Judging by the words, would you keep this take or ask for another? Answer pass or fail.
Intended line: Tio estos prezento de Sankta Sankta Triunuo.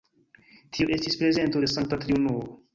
fail